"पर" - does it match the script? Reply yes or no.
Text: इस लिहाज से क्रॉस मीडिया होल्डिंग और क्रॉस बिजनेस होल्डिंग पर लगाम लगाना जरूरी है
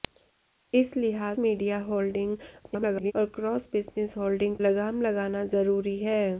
no